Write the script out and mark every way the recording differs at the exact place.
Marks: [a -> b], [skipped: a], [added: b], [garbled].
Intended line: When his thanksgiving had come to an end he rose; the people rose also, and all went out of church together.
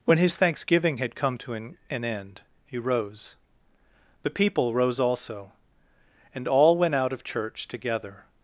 When his thanksgiving had come to an [added: an] end he rose; the people rose also, and all went out of church together.